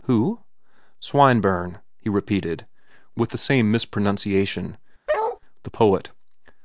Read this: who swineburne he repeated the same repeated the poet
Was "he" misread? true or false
false